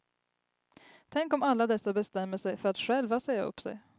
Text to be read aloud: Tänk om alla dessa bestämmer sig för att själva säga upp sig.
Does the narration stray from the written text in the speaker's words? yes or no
no